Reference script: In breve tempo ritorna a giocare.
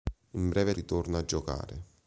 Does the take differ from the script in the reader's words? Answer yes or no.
yes